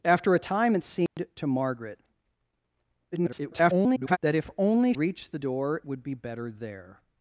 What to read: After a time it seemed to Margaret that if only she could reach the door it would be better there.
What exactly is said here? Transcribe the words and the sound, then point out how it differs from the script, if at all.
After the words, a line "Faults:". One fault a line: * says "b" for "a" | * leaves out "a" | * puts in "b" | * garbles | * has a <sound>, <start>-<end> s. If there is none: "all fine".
After a time it seemed to Margaret [garbled] that if only reach the door would be better there.
Faults:
* has a dropout, 1.1-1.2 s
* garbles
* leaves out "she could"
* leaves out "it"